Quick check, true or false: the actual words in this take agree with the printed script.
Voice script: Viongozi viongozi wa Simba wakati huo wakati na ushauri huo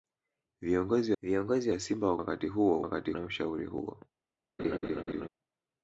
true